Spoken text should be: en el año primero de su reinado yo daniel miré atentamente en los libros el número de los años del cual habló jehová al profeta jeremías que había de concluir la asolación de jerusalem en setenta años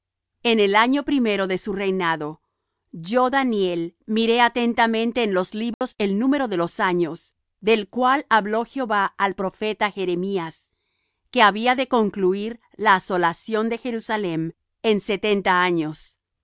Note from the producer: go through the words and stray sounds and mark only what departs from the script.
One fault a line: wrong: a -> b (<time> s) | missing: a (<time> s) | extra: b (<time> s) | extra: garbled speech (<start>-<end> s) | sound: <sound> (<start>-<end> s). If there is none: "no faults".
sound: dropout (5.7-5.8 s)